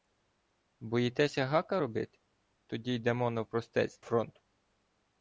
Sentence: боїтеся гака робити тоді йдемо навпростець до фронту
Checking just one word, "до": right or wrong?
wrong